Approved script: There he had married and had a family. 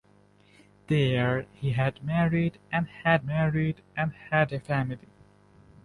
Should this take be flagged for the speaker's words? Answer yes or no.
yes